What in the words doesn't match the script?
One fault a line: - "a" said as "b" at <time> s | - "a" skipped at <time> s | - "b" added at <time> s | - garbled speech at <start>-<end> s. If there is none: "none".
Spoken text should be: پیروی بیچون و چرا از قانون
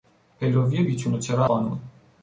- "از" skipped at 1.4 s